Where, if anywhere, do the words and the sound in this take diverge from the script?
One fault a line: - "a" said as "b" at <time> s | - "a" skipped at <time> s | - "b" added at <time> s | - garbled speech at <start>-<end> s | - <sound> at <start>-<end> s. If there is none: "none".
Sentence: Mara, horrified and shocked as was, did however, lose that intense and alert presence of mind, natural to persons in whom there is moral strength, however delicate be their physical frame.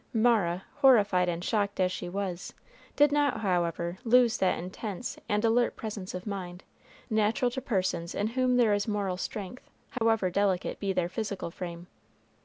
- "she" added at 1.9 s
- "not" added at 3.1 s
- dropout at 10.0-10.0 s